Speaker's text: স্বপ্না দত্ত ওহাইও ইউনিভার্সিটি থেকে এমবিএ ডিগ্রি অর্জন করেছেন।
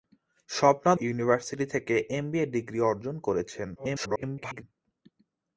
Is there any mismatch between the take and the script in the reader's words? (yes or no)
yes